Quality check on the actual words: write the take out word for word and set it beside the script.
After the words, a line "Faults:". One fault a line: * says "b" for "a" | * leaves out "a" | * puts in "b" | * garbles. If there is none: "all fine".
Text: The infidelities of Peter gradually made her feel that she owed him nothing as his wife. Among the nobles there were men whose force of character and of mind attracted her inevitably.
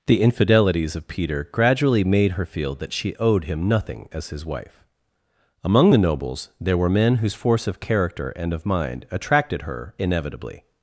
The infidelities of Peter gradually made her feel that she owed him nothing as his wife. Among the nobles there were men whose force of character and of mind attracted her inevitably.
Faults:
all fine